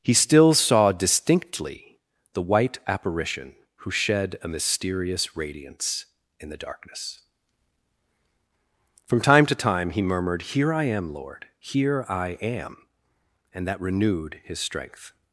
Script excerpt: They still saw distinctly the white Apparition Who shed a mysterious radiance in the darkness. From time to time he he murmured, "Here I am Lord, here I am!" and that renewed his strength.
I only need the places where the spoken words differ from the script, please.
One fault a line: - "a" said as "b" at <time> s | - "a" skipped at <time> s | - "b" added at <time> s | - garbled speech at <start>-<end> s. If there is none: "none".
- "They" said as "He" at 0.0 s
- "he" skipped at 10.0 s